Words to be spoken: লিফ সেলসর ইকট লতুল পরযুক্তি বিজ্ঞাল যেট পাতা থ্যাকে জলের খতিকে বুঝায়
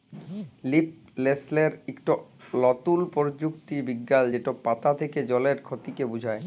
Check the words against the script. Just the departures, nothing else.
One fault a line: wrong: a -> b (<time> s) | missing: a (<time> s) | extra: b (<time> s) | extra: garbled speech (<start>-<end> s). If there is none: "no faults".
no faults